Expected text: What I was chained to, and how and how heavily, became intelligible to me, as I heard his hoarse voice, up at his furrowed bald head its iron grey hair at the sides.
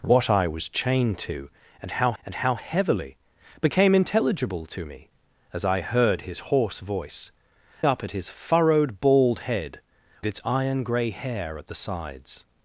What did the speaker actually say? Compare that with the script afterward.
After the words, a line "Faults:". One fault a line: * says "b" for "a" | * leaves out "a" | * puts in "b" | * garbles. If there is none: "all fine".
What I was chained to, and how and how heavily, became intelligible to me, as I heard his hoarse voice, up at his furrowed bald head its iron grey hair at the sides.
Faults:
all fine